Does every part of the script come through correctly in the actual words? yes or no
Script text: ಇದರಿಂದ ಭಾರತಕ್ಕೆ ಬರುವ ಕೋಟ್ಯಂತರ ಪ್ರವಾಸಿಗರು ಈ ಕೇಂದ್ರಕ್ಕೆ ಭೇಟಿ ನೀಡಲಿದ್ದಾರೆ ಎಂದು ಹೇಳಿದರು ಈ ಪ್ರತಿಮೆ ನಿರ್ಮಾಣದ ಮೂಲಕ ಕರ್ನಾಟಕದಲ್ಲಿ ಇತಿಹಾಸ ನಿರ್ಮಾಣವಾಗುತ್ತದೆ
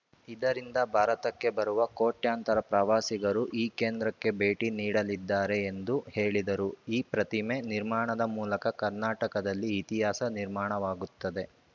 yes